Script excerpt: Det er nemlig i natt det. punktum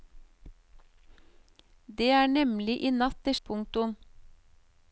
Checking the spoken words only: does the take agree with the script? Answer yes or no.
yes